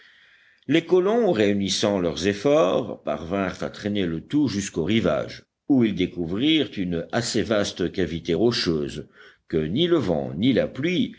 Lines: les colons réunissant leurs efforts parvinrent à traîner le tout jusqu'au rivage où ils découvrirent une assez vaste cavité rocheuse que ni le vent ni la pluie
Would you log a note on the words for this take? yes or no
no